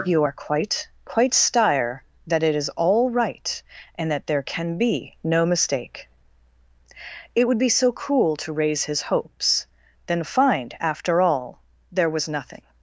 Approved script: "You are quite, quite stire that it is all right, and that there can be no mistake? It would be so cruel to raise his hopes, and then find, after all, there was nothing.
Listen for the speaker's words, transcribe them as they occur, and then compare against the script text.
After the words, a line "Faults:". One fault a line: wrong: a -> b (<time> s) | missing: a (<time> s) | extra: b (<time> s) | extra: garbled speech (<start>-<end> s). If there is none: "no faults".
"You are quite, quite stire that it is all right, and that there can be no mistake? It would be so cruel to raise his hopes, then find, after all, there was nothing.
Faults:
missing: and (9.7 s)